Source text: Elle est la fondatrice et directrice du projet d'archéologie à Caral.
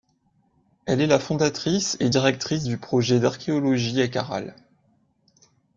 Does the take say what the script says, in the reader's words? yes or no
yes